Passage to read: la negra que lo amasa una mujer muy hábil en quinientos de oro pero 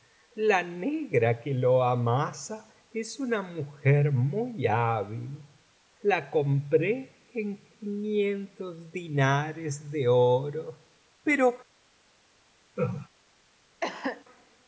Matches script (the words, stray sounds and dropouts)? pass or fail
fail